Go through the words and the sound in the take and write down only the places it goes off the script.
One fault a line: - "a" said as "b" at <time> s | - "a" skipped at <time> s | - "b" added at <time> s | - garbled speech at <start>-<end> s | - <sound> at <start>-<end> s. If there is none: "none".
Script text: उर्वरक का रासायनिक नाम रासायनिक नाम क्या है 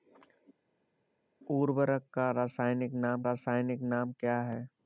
none